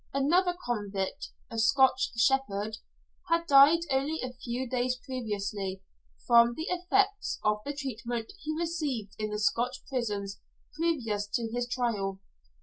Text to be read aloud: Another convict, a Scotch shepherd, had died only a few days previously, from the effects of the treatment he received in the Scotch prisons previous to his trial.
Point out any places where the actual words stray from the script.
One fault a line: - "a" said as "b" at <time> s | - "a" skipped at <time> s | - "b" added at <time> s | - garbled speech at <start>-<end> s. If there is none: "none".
none